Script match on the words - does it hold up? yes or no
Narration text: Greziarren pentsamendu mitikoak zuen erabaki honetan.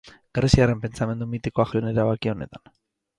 yes